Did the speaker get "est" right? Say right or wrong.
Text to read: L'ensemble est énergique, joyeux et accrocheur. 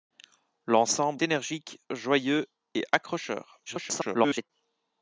wrong